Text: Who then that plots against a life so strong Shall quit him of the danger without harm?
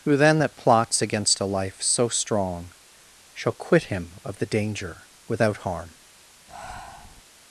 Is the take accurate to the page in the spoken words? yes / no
yes